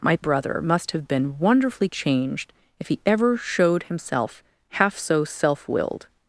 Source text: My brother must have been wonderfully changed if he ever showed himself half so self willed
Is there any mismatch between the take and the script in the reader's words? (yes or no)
no